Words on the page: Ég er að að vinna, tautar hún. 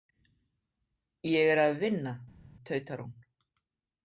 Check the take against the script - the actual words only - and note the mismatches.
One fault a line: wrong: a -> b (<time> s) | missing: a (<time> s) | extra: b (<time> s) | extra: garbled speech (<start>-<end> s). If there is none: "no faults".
missing: að (1.8 s)